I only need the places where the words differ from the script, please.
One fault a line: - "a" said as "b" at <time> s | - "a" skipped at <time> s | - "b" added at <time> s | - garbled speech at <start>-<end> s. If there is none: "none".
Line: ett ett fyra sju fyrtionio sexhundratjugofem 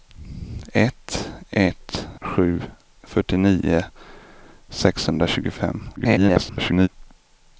- "fyra" skipped at 2.1 s
- garbled speech at 6.0-6.9 s